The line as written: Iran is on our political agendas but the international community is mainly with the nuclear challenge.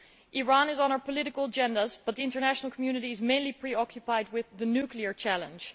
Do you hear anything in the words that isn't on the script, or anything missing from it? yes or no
yes